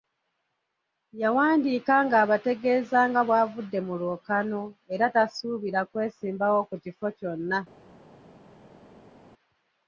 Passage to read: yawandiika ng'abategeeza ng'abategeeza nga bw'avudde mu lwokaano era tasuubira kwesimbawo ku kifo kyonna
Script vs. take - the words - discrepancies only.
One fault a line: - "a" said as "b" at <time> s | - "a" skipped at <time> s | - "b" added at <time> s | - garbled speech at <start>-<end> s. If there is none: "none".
- "ng'abategeeza" skipped at 3.0 s